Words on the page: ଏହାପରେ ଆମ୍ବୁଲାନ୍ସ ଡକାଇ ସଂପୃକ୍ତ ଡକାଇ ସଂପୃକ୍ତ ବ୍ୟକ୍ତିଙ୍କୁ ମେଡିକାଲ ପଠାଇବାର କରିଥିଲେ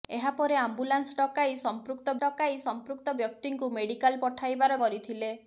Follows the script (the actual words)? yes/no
yes